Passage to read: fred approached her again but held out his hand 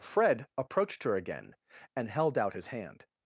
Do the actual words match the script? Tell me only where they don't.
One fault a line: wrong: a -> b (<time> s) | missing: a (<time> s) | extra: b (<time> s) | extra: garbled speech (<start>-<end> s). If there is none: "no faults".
wrong: but -> and (1.9 s)